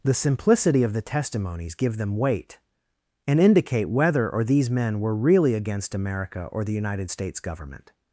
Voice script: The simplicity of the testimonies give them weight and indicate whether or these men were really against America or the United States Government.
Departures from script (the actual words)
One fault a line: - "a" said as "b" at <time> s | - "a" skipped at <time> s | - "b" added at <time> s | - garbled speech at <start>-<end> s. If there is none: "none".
none